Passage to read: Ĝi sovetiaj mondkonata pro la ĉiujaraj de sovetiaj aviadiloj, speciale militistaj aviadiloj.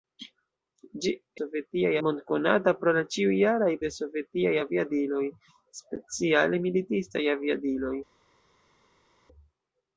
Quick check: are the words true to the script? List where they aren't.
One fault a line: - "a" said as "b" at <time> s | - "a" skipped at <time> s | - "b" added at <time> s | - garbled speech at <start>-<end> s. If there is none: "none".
none